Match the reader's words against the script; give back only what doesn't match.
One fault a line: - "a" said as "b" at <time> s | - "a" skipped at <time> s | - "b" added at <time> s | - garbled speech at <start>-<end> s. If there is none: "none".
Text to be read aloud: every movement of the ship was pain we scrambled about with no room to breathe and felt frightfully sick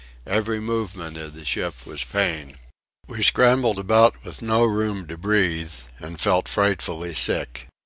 none